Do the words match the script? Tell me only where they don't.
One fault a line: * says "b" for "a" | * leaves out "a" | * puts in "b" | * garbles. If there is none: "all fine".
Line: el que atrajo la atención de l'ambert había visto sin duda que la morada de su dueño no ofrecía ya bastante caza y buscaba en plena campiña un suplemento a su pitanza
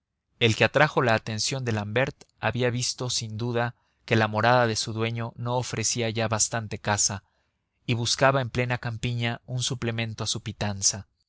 all fine